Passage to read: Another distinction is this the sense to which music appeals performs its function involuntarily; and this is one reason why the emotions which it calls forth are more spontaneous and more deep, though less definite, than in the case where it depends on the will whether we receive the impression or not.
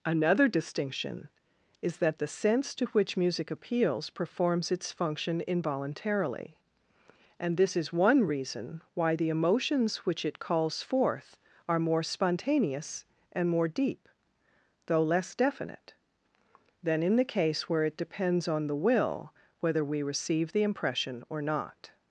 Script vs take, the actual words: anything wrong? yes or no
yes